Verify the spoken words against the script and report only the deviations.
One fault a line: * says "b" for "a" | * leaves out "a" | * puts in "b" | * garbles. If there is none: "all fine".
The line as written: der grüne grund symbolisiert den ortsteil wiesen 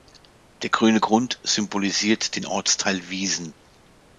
all fine